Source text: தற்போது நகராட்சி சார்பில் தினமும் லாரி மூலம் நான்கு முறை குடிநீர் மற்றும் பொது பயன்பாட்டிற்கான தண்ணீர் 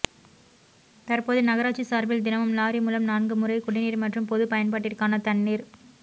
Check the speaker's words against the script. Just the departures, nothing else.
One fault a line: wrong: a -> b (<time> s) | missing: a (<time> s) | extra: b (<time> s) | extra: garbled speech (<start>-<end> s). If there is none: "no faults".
no faults